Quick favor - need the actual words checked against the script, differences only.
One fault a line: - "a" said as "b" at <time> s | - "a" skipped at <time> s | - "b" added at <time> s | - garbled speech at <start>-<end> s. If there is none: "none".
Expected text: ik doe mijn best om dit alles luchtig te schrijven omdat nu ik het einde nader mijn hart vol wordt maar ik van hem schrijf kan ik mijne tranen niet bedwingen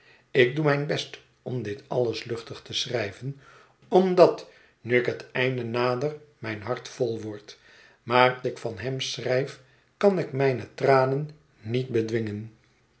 none